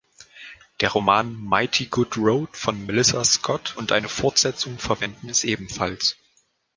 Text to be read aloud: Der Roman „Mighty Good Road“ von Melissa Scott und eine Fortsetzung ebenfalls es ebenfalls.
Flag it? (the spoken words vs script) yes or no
yes